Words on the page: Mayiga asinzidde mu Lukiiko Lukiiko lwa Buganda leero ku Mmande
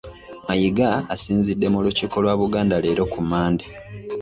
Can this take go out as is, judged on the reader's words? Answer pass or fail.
fail